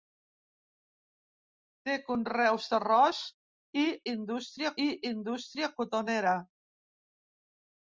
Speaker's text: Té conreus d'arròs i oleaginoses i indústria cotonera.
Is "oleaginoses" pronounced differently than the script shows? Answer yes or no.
yes